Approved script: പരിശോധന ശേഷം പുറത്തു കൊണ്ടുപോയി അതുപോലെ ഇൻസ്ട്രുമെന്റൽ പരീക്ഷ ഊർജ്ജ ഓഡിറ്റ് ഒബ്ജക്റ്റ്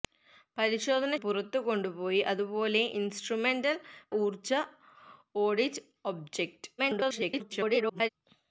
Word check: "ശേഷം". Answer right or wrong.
wrong